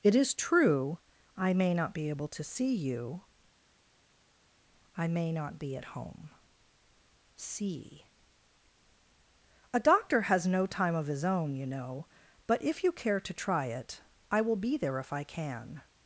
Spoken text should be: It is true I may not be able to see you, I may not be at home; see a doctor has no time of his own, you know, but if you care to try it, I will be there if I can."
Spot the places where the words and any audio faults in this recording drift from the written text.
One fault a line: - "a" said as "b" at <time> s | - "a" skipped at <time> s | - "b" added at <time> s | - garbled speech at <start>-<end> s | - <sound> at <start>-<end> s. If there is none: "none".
none